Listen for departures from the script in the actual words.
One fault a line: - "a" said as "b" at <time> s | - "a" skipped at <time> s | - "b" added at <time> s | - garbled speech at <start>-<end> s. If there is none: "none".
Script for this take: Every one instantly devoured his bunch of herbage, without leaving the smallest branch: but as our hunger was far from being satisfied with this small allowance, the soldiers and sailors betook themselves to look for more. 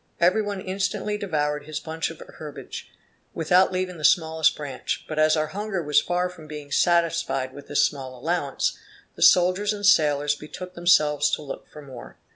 none